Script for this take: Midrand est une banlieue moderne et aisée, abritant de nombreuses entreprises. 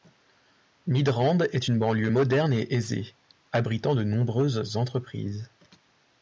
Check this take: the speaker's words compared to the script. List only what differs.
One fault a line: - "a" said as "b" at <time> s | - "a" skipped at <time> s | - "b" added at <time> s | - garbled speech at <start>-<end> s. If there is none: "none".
none